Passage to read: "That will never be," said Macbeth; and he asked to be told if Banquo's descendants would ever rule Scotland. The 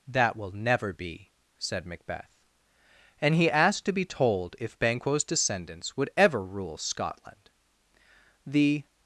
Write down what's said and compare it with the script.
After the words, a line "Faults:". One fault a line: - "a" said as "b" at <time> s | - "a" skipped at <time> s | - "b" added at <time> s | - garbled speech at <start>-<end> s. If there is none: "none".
"That will never be," said Macbeth; and he asked to be told if Banquo's descendants would ever rule Scotland. The
Faults:
none